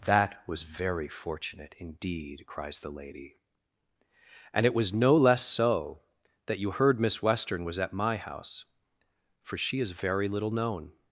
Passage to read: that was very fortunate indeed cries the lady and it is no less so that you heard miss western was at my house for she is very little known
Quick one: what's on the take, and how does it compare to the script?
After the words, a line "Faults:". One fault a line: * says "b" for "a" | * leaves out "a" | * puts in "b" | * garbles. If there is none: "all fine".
that was very fortunate indeed cries the lady and it was no less so that you heard miss western was at my house for she is very little known
Faults:
* says "was" for "is"